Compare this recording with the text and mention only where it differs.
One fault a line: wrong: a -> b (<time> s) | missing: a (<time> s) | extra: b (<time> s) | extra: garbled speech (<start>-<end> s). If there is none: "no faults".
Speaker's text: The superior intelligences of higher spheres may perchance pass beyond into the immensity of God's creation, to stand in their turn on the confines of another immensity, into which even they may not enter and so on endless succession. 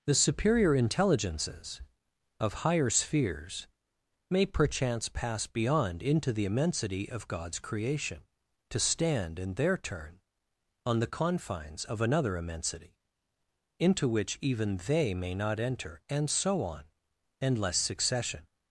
no faults